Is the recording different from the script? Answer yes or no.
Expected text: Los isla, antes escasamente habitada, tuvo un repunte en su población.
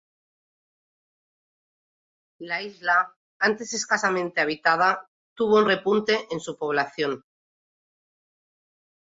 yes